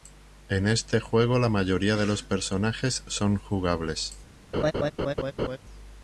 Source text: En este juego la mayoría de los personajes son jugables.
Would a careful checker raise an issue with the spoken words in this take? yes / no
no